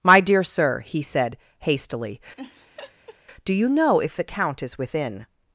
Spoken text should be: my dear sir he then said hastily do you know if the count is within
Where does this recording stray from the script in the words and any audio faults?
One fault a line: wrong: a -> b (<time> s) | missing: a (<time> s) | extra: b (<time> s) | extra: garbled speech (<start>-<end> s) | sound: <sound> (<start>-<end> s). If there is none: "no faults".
missing: then (1.0 s)
sound: laugh (2.3-3.2 s)